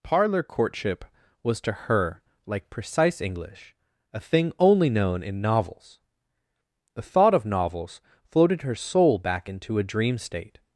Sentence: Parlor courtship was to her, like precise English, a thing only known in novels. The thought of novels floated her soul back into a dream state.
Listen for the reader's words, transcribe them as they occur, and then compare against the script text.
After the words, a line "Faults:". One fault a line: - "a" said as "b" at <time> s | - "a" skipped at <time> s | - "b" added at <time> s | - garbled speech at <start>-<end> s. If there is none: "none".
Parlor courtship was to her, like precise English, a thing only known in novels. The thought of novels floated her soul back into a dream state.
Faults:
none